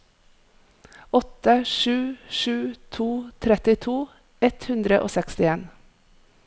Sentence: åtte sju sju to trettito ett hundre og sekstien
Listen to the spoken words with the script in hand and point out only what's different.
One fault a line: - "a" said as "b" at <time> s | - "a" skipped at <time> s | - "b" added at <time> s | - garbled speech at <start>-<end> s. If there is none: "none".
none